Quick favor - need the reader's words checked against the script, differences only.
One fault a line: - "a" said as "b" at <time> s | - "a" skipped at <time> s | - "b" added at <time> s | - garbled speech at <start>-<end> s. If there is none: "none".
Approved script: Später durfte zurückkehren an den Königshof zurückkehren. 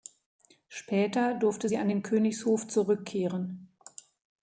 - "zurückkehren" said as "sie" at 1.6 s